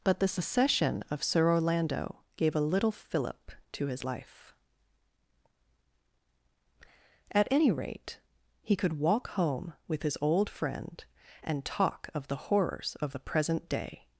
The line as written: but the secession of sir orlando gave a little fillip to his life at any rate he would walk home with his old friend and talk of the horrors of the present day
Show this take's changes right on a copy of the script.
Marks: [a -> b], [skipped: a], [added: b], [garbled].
but the secession of sir orlando gave a little fillip to his life at any rate he [would -> could] walk home with his old friend and talk of the horrors of the present day